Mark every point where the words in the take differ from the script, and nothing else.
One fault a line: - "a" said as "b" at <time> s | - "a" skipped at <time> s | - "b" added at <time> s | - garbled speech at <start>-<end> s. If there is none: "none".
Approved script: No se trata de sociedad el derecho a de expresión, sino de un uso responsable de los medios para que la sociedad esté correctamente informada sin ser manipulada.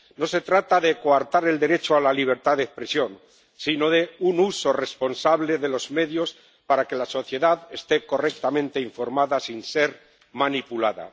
- "sociedad" said as "coartar" at 1.0 s
- "la libertad" added at 2.0 s